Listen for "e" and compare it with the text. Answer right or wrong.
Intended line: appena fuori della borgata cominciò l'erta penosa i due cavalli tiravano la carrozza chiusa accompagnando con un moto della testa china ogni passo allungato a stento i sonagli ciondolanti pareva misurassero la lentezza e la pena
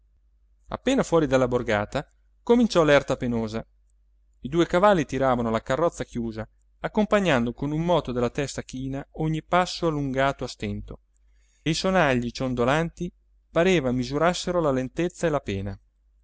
right